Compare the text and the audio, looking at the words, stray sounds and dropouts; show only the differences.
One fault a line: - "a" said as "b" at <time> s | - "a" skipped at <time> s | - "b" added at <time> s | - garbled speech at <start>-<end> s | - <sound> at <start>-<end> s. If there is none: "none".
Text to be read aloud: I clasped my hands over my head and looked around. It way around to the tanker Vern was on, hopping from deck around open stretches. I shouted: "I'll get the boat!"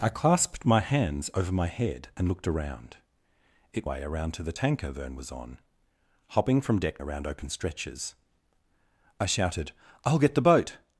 none